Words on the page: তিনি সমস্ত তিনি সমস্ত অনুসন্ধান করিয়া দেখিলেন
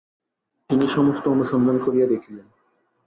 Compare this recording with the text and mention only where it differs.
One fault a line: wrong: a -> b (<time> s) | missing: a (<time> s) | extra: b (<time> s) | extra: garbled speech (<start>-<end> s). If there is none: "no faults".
missing: তিনি সমস্ত (1.2 s)